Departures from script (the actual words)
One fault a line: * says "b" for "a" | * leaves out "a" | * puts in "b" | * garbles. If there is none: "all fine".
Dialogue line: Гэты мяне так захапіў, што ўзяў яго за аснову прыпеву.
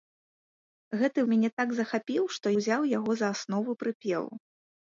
all fine